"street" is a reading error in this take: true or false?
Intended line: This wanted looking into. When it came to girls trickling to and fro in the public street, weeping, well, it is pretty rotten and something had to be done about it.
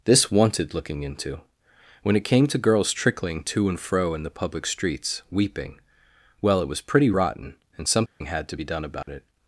true